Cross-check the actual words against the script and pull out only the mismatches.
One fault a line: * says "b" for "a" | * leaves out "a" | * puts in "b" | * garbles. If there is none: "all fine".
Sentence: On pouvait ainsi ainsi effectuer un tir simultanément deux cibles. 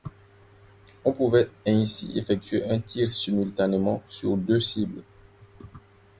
* leaves out "ainsi"
* puts in "sur"